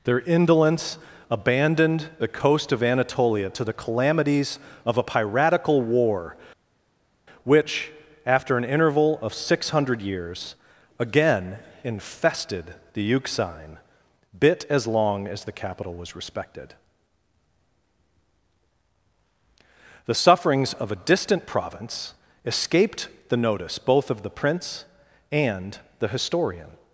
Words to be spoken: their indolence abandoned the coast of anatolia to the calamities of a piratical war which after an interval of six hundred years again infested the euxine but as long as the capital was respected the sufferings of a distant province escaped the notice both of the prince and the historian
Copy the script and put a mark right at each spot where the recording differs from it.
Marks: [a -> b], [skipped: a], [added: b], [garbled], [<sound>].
their indolence abandoned the coast of anatolia to the calamities of a piratical war which after an interval of six hundred years again infested the euxine [but -> bit] as long as the capital was respected the sufferings of a distant province escaped the notice both of the prince and the historian